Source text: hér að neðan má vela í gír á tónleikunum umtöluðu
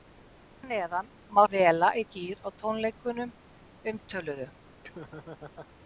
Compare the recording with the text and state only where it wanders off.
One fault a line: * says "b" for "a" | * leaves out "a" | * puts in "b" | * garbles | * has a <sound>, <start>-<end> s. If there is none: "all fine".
* has a laugh, 4.8-5.7 s